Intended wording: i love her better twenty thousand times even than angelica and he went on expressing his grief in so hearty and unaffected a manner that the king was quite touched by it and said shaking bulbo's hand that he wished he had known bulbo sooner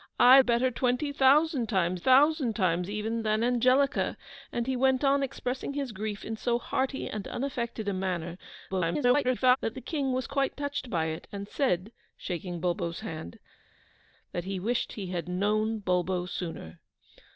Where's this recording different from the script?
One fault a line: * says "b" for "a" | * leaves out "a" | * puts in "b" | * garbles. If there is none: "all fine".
* says "better twenty thousand times" for "love her better twenty"
* garbles